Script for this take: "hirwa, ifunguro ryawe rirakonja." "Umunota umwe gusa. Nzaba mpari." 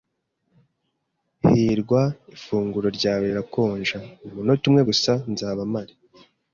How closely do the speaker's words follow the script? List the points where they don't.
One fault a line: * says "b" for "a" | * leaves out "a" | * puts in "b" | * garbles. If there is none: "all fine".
all fine